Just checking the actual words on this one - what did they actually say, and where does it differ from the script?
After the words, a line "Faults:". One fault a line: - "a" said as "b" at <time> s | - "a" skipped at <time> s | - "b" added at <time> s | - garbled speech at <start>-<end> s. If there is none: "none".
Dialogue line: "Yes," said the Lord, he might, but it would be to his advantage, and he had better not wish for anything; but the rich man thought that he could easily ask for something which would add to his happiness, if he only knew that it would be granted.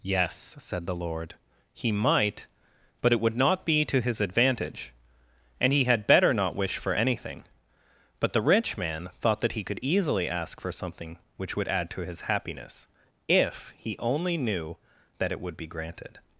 "Yes," said the Lord, he might, but it would not be to his advantage, and he had better not wish for anything; but the rich man thought that he could easily ask for something which would add to his happiness, if he only knew that it would be granted.
Faults:
- "not" added at 3.4 s